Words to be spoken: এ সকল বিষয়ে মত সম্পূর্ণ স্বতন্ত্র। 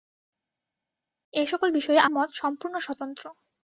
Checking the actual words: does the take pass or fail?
pass